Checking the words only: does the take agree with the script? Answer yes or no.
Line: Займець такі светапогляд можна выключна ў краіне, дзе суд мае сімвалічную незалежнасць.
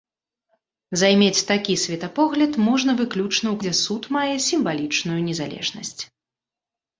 no